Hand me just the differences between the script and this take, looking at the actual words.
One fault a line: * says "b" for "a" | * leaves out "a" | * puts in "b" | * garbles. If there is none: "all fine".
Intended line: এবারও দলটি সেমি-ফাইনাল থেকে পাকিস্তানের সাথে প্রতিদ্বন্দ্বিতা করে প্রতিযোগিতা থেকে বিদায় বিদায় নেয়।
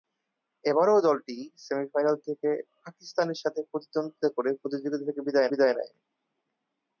all fine